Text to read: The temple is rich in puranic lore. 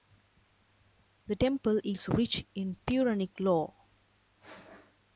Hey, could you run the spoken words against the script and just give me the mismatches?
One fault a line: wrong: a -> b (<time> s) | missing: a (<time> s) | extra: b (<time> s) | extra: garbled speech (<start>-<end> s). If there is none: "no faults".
no faults